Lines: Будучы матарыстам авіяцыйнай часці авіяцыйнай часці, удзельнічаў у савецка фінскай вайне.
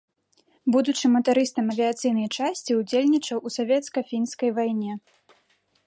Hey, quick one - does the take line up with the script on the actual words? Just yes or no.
no